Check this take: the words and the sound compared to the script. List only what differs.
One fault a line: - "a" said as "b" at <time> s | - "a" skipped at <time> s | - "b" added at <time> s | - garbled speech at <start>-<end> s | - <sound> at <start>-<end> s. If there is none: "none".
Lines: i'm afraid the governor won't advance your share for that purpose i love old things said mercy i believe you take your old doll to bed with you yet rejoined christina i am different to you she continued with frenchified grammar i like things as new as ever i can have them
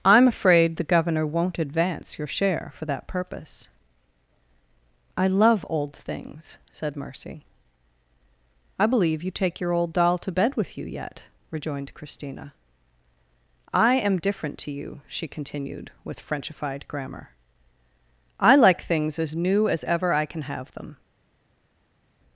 none